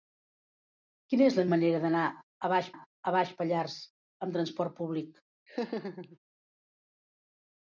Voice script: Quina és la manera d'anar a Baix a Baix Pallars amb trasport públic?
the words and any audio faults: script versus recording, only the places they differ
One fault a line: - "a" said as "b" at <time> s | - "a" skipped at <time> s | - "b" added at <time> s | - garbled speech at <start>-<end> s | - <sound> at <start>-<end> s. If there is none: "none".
- laugh at 5.5-6.2 s